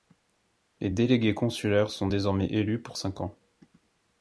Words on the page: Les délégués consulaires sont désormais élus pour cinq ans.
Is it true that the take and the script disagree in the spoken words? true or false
false